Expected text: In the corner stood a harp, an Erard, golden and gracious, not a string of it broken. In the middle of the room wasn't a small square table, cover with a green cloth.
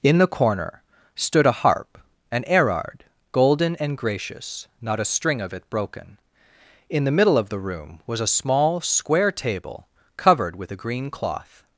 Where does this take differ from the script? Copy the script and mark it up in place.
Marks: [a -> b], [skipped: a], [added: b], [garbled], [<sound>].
In the corner stood a harp, an Erard, golden and gracious, not a string of it broken. In the middle of the room [wasn't -> was] a small square table, [cover -> covered] with a green cloth.